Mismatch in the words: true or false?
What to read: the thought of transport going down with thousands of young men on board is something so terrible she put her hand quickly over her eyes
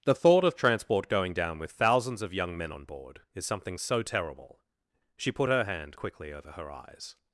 false